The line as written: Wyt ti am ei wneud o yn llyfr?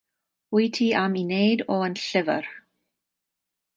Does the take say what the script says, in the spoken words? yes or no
yes